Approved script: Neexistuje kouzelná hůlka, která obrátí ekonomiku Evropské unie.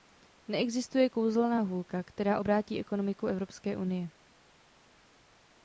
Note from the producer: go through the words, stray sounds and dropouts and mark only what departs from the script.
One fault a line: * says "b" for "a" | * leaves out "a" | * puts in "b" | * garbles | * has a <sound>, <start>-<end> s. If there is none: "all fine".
all fine